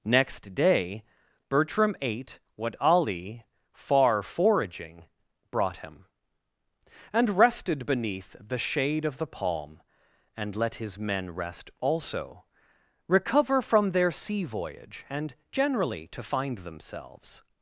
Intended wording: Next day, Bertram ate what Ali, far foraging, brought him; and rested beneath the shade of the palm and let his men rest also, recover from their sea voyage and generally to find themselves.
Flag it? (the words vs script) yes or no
no